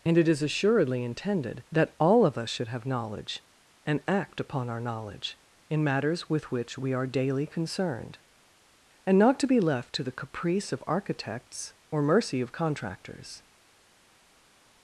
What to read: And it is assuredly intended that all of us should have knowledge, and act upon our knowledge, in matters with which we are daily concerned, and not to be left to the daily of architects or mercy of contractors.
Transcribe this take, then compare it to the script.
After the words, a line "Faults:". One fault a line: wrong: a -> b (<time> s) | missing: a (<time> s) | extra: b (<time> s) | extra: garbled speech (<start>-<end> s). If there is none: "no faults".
And it is assuredly intended that all of us should have knowledge, and act upon our knowledge, in matters with which we are daily concerned, and not to be left to the caprice of architects or mercy of contractors.
Faults:
wrong: daily -> caprice (10.1 s)